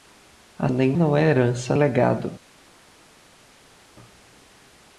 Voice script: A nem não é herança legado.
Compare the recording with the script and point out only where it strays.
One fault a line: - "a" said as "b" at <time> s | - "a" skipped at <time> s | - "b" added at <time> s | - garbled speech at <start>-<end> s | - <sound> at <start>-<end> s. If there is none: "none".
none